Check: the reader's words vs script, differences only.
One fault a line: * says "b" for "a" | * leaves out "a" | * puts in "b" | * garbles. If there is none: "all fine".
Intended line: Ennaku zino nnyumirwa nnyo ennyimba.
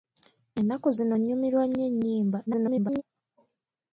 * garbles